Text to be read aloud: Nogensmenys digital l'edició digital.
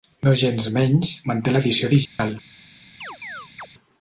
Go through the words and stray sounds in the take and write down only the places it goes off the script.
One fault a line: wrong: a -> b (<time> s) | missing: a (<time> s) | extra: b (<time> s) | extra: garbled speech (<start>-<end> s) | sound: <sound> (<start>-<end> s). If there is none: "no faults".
wrong: digital -> manté (1.3 s)
sound: dropout (2.1-2.2 s)
sound: chirp (3.0-3.7 s)